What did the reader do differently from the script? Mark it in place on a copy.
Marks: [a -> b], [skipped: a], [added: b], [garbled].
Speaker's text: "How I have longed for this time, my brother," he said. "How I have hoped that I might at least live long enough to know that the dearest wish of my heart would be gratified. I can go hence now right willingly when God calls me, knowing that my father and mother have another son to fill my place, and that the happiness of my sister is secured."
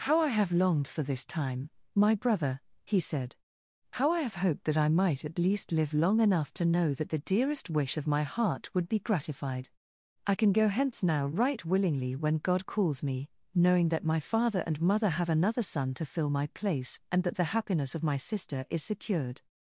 "How I have longed for this time, my brother," he said. "How I have hoped that I might at least live long enough to know that the dearest wish of my heart would be gratified. I can go hence now right willingly when God calls me, knowing that my father and mother have another son to fill my place, and that the happiness of my sister is secured."